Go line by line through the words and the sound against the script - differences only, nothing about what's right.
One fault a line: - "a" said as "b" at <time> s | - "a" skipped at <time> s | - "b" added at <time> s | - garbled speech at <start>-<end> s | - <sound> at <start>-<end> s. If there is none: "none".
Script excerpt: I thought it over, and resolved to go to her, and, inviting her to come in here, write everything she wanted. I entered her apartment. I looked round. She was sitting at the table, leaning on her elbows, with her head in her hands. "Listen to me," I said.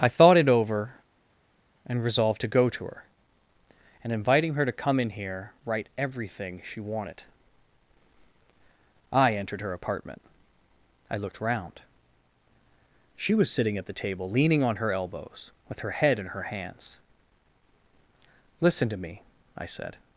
none